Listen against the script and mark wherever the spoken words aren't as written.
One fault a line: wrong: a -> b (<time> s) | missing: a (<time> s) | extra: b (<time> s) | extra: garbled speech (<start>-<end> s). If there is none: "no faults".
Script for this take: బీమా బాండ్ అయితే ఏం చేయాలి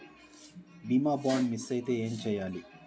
extra: మిస్ (1.5 s)